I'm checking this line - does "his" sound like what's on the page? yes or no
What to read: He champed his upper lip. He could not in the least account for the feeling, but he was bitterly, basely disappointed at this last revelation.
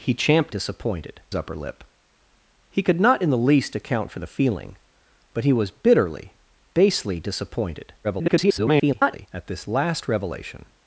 no